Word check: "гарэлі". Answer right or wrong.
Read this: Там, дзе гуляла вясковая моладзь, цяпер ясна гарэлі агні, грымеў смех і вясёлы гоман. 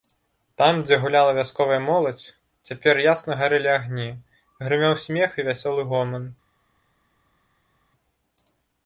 right